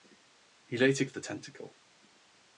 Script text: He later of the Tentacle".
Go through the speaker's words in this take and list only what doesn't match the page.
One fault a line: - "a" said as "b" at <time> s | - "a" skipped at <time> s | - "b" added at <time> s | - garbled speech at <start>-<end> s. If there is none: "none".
none